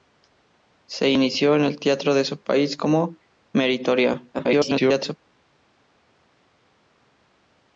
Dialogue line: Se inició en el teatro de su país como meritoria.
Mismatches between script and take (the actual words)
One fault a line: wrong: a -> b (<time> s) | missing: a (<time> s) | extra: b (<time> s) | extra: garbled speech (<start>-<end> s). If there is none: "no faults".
extra: garbled speech (4.3-5.2 s)